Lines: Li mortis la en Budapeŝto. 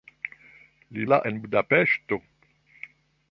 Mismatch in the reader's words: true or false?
true